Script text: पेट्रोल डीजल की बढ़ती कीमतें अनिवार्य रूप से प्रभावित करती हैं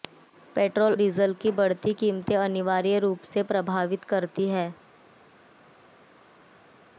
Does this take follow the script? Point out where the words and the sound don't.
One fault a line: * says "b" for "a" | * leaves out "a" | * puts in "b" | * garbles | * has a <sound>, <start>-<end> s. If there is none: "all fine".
all fine